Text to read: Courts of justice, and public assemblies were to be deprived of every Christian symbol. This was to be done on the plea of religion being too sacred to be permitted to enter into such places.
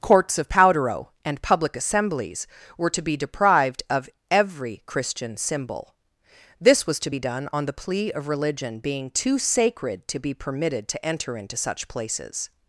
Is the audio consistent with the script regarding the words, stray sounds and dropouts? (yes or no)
no